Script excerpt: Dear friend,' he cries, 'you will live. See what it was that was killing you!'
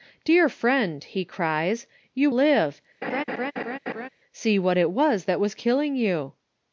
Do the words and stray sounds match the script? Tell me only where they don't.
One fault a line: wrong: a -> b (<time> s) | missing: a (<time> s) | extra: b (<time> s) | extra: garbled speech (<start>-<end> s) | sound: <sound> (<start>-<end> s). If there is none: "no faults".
missing: will (2.3 s)
sound: laugh (3.0-4.1 s)